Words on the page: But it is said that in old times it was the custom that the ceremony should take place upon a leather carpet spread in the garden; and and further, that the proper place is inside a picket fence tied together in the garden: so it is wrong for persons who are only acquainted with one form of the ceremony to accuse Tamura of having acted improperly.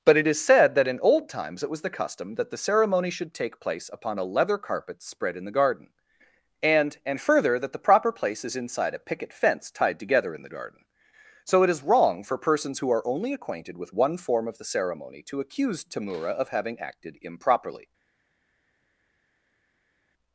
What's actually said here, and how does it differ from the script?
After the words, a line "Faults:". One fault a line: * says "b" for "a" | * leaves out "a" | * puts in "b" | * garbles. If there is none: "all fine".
But it is said that in old times it was the custom that the ceremony should take place upon a leather carpet spread in the garden; and and further, that the proper place is inside a picket fence tied together in the garden: so it is wrong for persons who are only acquainted with one form of the ceremony to accuse Tamura of having acted improperly.
Faults:
all fine